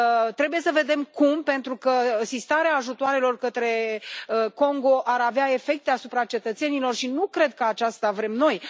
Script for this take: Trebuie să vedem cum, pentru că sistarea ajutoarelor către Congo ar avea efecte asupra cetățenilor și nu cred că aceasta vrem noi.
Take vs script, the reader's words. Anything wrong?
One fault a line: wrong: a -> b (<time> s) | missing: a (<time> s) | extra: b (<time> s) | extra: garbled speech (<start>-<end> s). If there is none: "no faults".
no faults